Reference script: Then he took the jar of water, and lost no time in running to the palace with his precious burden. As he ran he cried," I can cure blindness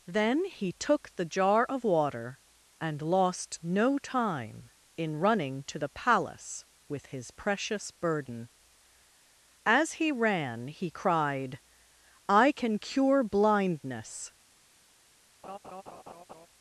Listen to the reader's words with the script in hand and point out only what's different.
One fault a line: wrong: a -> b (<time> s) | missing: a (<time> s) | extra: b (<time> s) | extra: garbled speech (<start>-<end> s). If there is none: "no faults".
no faults